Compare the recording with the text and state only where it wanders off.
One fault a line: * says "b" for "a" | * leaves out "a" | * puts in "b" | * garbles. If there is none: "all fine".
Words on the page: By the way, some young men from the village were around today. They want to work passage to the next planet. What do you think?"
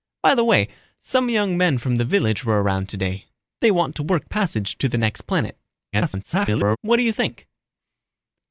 * garbles